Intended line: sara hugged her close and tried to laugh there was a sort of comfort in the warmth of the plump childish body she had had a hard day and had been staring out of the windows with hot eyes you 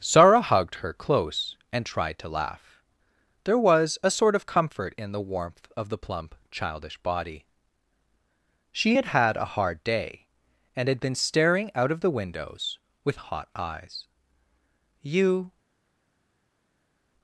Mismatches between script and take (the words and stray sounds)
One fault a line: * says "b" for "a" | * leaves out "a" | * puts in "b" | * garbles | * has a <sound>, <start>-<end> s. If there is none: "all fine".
all fine